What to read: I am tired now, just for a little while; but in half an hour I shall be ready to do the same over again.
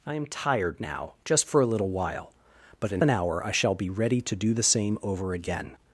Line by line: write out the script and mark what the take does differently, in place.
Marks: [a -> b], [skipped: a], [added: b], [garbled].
I am tired now, just for a little while; but in [skipped: half] an hour I shall be ready to do the same over again.